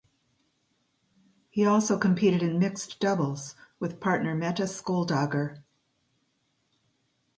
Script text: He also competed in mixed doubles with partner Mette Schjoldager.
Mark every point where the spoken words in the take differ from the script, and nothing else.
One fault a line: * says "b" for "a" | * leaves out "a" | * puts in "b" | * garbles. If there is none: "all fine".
all fine